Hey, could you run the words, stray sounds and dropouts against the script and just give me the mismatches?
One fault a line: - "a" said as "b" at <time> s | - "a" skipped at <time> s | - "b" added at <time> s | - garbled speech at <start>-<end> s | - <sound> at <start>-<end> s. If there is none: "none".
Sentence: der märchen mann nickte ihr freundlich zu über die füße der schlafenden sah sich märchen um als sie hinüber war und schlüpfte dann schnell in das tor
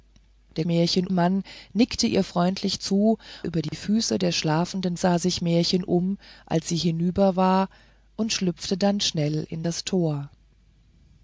- dropout at 3.7-3.7 s